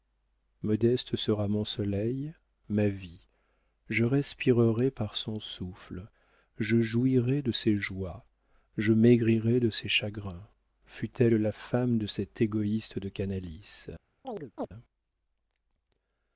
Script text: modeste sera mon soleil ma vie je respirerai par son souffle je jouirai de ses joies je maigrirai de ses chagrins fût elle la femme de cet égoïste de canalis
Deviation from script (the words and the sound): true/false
true